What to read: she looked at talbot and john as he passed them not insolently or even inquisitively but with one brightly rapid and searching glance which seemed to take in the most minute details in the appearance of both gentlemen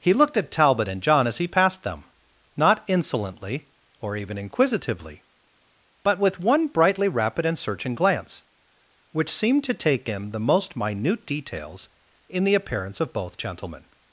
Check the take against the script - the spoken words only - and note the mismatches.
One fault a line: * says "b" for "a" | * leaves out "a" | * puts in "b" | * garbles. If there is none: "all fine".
* says "he" for "she"